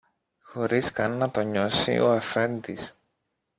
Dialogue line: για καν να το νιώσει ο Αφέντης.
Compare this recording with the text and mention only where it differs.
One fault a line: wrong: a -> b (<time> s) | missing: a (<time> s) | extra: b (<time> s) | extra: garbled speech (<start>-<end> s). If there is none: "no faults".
wrong: για -> χωρίς (0.4 s)